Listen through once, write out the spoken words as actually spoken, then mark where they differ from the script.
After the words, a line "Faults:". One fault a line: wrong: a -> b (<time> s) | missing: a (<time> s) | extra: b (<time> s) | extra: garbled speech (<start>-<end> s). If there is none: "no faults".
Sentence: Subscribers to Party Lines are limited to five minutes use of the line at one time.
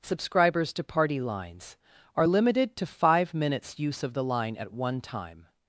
Subscribers to Party Lines are limited to five minutes use of the line at one time.
Faults:
no faults